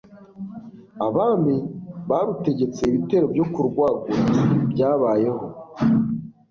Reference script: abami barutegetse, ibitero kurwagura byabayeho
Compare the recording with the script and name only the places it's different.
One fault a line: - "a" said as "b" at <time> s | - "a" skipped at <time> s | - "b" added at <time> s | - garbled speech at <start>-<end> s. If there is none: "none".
- "byo" added at 3.3 s